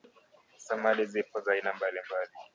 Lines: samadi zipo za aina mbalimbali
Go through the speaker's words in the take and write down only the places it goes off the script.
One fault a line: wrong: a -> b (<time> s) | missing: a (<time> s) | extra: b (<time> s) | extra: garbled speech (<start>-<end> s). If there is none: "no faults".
no faults